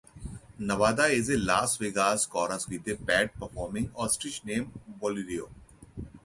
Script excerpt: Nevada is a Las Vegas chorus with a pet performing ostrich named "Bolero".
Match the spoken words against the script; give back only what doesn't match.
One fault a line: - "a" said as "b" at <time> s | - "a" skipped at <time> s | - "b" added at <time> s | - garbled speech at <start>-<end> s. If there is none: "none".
none